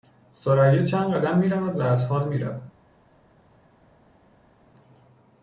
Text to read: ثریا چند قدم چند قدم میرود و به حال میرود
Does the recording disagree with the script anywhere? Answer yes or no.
yes